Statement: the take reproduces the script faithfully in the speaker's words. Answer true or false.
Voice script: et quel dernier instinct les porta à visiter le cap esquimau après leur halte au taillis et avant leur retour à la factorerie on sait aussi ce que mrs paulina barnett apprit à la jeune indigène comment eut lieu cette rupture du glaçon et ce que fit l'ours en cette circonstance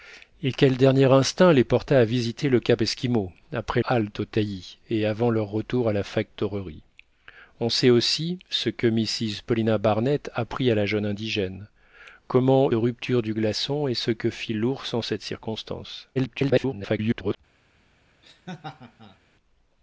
false